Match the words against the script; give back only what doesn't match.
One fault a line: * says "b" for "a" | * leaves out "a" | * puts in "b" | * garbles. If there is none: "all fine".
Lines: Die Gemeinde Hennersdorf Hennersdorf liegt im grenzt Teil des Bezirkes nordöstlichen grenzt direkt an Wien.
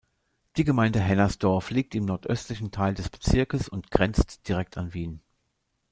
* leaves out "Hennersdorf"
* says "nordöstlichen" for "grenzt"
* says "und" for "nordöstlichen"